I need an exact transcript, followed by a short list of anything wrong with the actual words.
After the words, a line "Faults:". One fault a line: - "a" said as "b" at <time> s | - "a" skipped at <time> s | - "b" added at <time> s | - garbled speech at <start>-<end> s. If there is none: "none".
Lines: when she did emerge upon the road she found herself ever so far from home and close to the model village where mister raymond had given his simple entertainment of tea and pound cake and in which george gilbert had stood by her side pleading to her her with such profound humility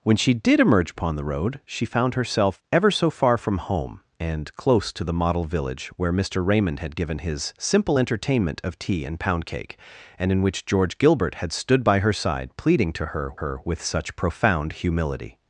when she did emerge upon the road she found herself ever so far from home and close to the model village where mister raymond had given his simple entertainment of tea and pound cake and in which george gilbert had stood by her side pleading to her her with such profound humility
Faults:
none